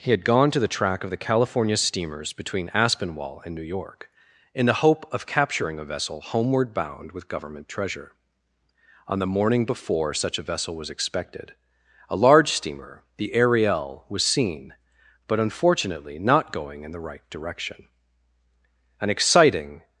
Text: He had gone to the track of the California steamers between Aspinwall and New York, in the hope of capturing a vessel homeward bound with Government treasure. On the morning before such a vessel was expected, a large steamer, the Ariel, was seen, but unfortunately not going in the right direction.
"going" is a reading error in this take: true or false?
false